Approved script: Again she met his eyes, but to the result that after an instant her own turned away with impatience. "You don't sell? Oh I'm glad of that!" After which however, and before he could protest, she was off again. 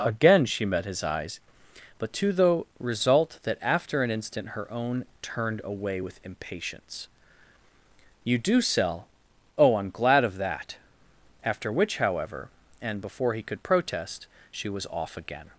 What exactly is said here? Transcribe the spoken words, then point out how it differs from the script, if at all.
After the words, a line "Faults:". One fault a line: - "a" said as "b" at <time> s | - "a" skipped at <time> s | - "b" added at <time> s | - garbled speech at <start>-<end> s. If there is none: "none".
Again she met his eyes, but to the result that after an instant her own turned away with impatience. "You do sell? Oh I'm glad of that!" After which however, and before he could protest, she was off again.
Faults:
- "don't" said as "do" at 8.4 s